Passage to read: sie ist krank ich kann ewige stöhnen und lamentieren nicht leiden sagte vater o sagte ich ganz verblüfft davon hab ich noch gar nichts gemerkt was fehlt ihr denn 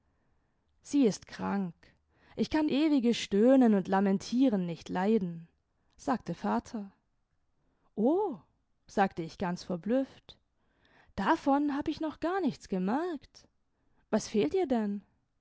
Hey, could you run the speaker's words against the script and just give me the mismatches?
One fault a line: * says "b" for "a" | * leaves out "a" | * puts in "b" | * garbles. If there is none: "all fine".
all fine